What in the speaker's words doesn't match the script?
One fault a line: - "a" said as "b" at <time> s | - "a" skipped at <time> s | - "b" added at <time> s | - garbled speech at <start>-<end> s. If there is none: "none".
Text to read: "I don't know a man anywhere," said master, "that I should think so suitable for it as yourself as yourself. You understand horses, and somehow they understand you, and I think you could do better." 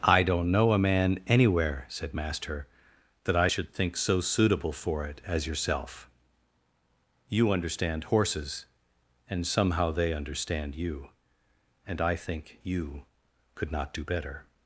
- "as yourself" skipped at 6.1 s
- "not" added at 13.7 s